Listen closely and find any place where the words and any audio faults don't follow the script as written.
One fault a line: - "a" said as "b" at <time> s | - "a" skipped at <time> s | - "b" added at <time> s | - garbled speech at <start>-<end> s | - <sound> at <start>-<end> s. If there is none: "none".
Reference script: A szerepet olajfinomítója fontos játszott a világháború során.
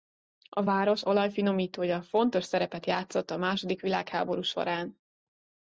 - "szerepet" said as "város" at 0.6 s
- "szerepet" added at 2.4 s
- "második" added at 3.4 s